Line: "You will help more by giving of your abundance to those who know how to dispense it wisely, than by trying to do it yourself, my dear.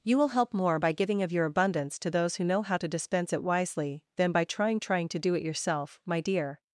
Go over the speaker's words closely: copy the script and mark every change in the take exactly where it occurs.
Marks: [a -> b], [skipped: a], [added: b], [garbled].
"You will help more by giving of your abundance to those who know how to dispense it wisely, than by trying [added: trying] to do it yourself, my dear.